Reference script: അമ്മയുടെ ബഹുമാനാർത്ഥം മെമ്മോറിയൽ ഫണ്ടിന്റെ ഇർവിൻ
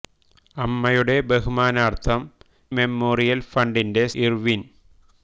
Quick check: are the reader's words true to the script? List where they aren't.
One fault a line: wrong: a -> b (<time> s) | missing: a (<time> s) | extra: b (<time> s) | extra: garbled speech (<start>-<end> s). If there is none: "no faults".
no faults